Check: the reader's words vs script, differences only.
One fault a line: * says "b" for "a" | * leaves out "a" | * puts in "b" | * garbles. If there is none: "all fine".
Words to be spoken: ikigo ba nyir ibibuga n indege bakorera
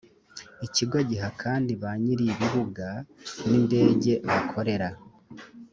* puts in "giha kandi"